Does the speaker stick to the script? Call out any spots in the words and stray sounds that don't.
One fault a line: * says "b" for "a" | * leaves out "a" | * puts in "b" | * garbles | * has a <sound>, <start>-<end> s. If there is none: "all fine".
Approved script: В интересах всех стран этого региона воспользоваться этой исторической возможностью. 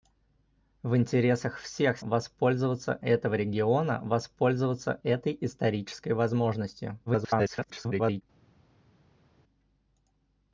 * says "воспользоваться" for "стран"
* garbles